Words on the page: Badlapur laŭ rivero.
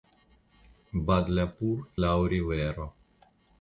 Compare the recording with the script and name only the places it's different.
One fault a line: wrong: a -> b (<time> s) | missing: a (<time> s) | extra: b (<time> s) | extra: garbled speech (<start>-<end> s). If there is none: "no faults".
no faults